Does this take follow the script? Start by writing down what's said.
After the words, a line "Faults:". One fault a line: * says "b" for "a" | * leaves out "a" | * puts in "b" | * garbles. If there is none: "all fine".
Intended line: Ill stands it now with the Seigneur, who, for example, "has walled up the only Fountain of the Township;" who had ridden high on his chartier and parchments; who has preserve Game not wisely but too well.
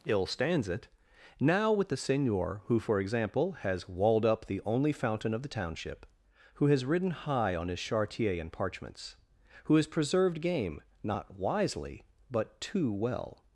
Ill stands it now with the Seigneur, who, for example, "has walled up the only Fountain of the Township;" who has ridden high on his chartier and parchments; who has preserved Game not wisely but too well.
Faults:
* says "has" for "had"
* says "preserved" for "preserve"